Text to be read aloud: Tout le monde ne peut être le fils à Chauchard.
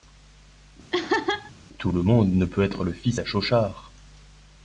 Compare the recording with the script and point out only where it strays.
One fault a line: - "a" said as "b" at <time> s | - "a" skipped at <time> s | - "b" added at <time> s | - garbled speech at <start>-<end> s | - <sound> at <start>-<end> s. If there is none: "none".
- laugh at 0.9-1.5 s